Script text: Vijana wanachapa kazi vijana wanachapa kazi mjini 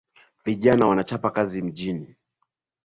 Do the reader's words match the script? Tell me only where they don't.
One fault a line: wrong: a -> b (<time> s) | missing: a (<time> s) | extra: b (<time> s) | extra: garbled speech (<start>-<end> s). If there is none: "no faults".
missing: vijana wanachapa kazi (1.6 s)